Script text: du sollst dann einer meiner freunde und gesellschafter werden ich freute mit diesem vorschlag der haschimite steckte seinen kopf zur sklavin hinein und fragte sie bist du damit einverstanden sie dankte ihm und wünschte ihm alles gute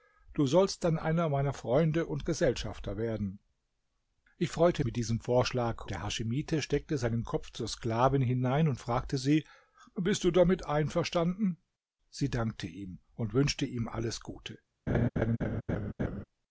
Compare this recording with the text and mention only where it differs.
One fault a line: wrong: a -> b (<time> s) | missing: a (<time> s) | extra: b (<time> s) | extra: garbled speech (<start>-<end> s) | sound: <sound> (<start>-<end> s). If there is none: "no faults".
sound: laugh (14.9-16.2 s)